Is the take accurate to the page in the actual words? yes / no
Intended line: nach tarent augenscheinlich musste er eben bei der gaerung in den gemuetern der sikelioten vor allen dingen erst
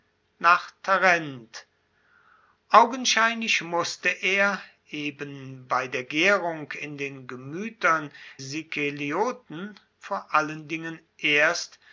no